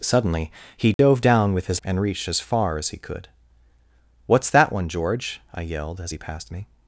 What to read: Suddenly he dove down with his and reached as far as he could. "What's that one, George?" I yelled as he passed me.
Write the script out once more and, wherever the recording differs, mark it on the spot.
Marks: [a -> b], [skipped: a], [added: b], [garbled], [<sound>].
Suddenly he dove [dropout] down with his and reached as far as he could. "What's that one, George?" I yelled as he passed me.